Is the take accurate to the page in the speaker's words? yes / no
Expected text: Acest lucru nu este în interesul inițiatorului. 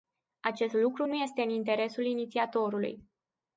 yes